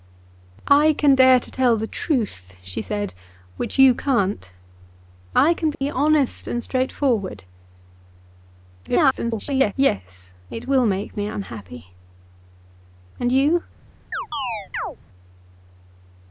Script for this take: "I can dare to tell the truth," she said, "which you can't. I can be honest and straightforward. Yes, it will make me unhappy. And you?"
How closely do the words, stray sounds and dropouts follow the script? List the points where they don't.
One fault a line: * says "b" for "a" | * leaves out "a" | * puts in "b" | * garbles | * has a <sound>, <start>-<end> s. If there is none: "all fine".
* has a dropout, 5.7-5.8 s
* garbles
* has a chirp, 14.1-15.0 s